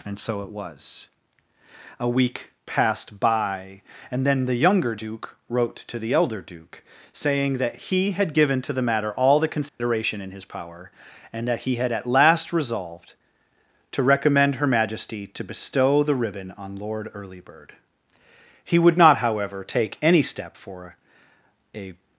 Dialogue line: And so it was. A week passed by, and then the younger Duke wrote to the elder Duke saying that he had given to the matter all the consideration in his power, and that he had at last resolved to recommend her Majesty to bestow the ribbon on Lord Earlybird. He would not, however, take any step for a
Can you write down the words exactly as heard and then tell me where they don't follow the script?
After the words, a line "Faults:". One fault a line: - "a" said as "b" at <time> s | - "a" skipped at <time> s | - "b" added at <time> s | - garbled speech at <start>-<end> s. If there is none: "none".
And so it was. A week passed by, and then the younger Duke wrote to the elder Duke saying that he had given to the matter all the consideration in his power, and that he had at last resolved to recommend her Majesty to bestow the ribbon on Lord Earlybird. He would not, however, take any step for a
Faults:
none